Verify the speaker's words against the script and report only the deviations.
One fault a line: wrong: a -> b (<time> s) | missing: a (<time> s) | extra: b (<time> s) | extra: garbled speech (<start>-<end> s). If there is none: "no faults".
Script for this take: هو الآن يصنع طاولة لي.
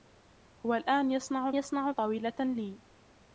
extra: يصنع (1.5 s)